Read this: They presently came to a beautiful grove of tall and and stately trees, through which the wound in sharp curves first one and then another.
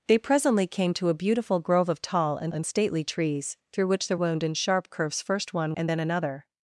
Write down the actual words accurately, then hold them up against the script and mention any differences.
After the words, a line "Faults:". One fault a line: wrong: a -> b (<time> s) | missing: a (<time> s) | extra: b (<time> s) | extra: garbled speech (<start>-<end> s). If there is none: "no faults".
They presently came to a beautiful grove of tall and and stately trees, through which the wound in sharp curves first one and then another.
Faults:
no faults